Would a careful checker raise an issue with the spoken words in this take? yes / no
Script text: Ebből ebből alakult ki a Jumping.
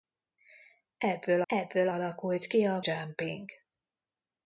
no